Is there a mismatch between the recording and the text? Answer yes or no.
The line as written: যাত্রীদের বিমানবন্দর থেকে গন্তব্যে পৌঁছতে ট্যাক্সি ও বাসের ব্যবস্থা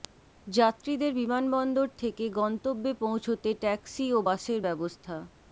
no